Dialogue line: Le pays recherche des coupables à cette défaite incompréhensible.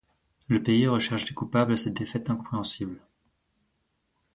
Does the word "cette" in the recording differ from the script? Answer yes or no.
no